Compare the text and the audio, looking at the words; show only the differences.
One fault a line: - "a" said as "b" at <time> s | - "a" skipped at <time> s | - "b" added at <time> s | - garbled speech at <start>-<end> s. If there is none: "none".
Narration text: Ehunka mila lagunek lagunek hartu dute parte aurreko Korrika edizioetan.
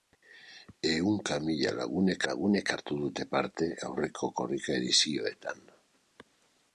none